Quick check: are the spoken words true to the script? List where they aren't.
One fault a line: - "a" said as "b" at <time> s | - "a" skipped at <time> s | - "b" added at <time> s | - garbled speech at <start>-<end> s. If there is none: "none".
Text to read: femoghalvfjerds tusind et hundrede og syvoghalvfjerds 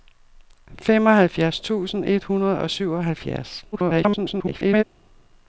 - garbled speech at 3.7-4.8 s